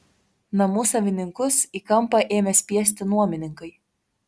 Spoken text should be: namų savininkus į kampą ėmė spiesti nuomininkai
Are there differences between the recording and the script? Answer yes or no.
no